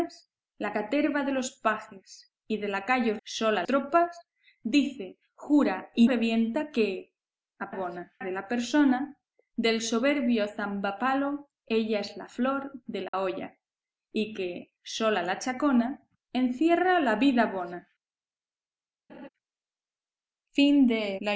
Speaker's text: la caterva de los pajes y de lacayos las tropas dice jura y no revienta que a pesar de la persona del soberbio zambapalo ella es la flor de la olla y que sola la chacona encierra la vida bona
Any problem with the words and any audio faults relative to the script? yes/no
yes